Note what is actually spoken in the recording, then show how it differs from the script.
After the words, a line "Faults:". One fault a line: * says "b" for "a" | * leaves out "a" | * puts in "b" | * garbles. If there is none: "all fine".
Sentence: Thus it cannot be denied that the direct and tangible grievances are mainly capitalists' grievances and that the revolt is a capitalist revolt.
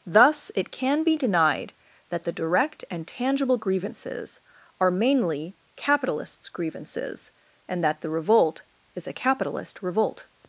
Thus it can be denied that the direct and tangible grievances are mainly capitalists' grievances and that the revolt is a capitalist revolt.
Faults:
* says "can" for "cannot"